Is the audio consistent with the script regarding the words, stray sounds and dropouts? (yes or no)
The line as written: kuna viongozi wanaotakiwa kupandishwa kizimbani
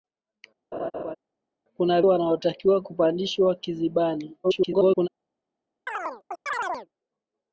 no